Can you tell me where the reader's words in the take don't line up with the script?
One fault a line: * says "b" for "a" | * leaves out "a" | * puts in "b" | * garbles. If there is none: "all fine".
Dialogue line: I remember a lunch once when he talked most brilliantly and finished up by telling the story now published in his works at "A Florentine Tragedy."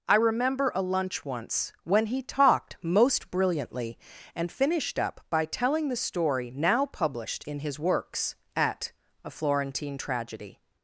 all fine